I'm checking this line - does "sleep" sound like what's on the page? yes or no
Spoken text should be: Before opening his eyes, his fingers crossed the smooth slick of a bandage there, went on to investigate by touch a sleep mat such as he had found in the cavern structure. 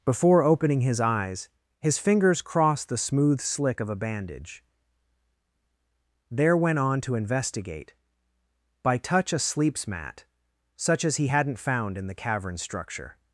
no